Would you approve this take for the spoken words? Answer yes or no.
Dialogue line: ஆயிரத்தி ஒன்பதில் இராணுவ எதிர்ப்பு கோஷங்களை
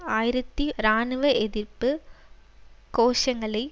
no